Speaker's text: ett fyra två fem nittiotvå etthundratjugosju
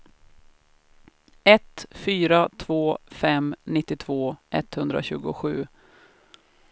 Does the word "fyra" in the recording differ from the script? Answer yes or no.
no